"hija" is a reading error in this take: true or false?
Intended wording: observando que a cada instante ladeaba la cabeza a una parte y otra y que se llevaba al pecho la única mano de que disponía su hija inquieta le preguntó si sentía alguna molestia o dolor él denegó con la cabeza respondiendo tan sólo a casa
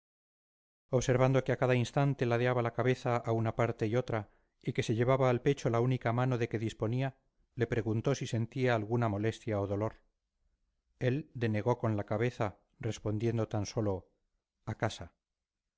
true